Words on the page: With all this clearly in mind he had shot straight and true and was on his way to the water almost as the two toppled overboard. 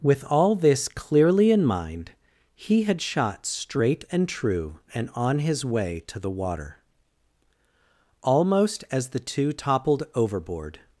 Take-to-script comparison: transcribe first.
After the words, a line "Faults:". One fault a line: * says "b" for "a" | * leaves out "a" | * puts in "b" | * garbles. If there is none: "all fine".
With all this clearly in mind he had shot straight and true and on his way to the water almost as the two toppled overboard.
Faults:
* leaves out "was"